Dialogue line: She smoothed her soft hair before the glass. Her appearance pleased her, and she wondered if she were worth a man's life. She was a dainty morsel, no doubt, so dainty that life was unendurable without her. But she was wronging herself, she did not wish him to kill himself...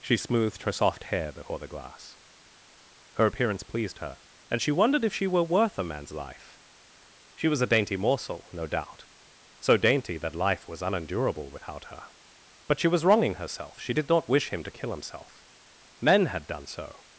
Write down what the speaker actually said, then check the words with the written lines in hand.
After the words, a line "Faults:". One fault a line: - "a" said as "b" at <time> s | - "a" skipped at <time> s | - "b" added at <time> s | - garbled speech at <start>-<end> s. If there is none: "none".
She smoothed her soft hair before the glass. Her appearance pleased her, and she wondered if she were worth a man's life. She was a dainty morsel, no doubt, so dainty that life was unendurable without her. But she was wronging herself, she did not wish him to kill himself... Men had done so
Faults:
- "Men had done so" added at 16.0 s